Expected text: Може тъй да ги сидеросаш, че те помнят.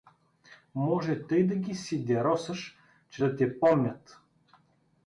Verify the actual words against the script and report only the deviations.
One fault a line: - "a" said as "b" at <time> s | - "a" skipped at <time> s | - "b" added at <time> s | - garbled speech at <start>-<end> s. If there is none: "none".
- "да" added at 3.2 s